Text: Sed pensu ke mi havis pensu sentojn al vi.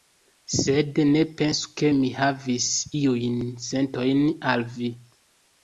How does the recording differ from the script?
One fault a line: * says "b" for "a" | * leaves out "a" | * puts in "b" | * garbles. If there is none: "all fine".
* puts in "ne"
* says "iujn" for "pensu"